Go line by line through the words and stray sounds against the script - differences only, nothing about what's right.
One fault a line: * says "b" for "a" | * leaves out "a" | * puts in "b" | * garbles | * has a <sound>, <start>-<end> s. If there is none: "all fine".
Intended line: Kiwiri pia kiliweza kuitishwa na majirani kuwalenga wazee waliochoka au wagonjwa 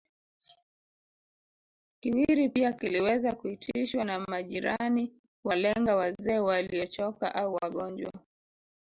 all fine